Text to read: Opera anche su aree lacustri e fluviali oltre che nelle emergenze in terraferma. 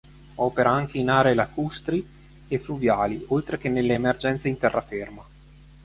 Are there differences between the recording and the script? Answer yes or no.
yes